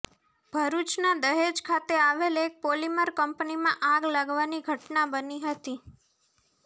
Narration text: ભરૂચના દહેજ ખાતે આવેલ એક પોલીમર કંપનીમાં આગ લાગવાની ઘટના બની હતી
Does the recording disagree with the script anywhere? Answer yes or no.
no